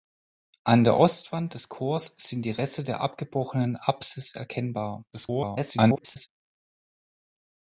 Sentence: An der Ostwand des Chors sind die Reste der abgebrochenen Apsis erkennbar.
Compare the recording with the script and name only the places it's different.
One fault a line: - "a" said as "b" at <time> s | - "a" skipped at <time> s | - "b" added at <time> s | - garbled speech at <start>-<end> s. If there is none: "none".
- garbled speech at 5.1-6.3 s